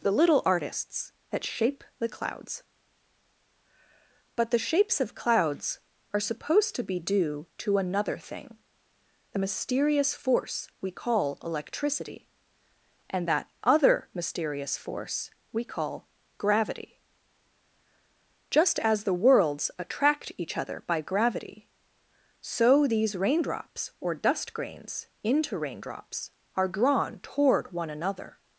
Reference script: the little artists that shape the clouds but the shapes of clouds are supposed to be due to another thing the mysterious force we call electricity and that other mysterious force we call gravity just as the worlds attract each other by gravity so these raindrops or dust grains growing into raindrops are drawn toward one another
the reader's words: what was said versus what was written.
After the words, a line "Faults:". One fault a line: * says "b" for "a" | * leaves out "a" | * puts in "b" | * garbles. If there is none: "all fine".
the little artists that shape the clouds but the shapes of clouds are supposed to be due to another thing the mysterious force we call electricity and that other mysterious force we call gravity just as the worlds attract each other by gravity so these raindrops or dust grains into raindrops are drawn toward one another
Faults:
* leaves out "growing"